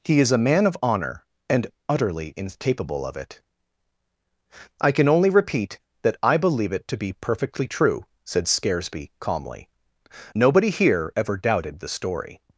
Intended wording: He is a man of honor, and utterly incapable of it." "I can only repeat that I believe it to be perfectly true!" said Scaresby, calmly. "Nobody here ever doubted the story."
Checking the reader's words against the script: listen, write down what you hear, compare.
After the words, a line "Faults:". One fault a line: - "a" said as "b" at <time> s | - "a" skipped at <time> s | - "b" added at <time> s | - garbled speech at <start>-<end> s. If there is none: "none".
He is a man of honor, and utterly incapable of it." "I can only repeat that I believe it to be perfectly true!" said Scaresby, calmly. "Nobody here ever doubted the story."
Faults:
none